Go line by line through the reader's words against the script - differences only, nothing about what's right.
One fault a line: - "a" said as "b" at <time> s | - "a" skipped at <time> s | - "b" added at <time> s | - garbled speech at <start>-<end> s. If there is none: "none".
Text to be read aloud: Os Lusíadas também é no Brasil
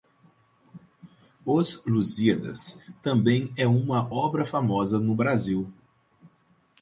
- "uma obra famosa" added at 3.7 s